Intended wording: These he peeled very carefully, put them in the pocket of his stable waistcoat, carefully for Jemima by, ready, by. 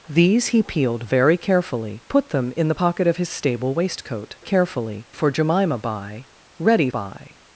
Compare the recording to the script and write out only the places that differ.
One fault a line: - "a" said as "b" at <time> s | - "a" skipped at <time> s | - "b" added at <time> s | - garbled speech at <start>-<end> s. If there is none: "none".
none